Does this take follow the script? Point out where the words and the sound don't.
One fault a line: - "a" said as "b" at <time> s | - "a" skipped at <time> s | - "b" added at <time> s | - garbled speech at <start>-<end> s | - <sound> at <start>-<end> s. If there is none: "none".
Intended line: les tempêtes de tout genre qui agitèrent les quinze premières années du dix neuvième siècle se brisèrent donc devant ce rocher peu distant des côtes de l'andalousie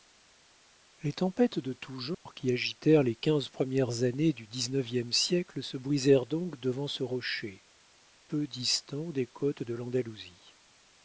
- dropout at 2.1-2.3 s